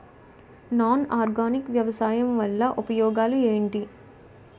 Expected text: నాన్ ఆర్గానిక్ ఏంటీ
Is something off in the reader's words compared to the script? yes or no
yes